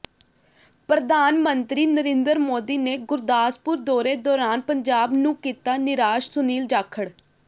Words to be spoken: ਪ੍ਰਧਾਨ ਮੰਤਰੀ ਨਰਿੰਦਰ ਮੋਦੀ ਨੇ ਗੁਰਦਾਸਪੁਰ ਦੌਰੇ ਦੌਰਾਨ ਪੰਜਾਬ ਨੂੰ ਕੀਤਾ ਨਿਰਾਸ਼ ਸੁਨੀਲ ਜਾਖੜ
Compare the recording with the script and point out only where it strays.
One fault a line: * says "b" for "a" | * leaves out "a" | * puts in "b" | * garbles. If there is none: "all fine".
all fine